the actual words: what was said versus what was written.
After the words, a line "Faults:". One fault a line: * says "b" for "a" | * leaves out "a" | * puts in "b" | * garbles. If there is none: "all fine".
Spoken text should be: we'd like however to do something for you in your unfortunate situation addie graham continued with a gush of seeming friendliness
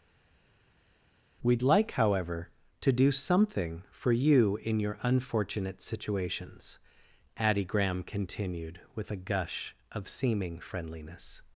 we'd like however to do something for you in your unfortunate situations addie graham continued with a gush of seeming friendliness
Faults:
* says "situations" for "situation"